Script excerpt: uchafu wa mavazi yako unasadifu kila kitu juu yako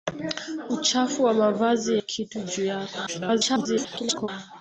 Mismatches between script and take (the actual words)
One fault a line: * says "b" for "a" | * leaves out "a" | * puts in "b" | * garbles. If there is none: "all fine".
* leaves out "yako unasadifu kila"
* garbles